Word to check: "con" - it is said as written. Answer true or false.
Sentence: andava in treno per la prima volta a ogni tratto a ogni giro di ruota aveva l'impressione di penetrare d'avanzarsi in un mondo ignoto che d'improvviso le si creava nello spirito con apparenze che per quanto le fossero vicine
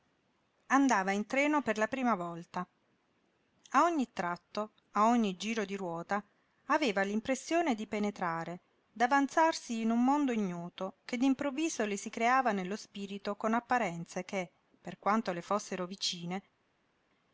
true